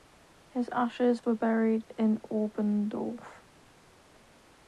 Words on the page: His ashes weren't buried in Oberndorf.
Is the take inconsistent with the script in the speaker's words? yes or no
yes